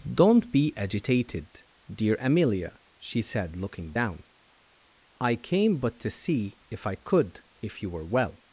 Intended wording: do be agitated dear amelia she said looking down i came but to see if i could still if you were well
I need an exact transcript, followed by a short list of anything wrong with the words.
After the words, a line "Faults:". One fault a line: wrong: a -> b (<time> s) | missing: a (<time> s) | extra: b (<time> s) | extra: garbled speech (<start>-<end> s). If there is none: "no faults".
don't be agitated dear amelia she said looking down i came but to see if i could if you were well
Faults:
wrong: do -> don't (0.1 s)
missing: still (7.4 s)